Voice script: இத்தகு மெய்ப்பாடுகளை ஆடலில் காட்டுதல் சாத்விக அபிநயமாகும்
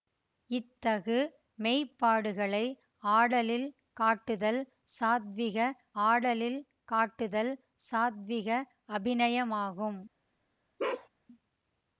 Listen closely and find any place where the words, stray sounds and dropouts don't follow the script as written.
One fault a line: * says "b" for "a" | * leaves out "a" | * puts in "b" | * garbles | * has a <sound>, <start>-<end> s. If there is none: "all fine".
* puts in "ஆடலில் காட்டுதல் சாத்விக"
* has a bark, 10.8-11.1 s